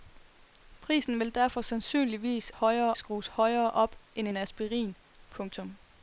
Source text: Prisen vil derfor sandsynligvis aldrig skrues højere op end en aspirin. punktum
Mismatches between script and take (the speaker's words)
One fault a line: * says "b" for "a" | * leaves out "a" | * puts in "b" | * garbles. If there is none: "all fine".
* says "højere" for "aldrig"